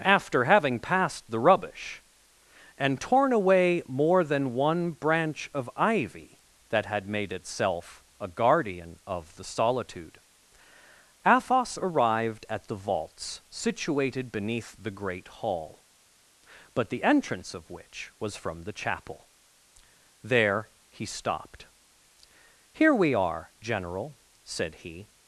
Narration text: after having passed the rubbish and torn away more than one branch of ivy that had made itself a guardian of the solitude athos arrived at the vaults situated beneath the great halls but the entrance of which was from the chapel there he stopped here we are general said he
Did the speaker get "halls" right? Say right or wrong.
wrong